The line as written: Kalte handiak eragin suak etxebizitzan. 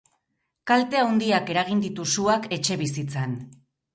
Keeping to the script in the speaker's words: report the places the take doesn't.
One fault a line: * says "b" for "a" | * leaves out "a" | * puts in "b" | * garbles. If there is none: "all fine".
* puts in "ditu"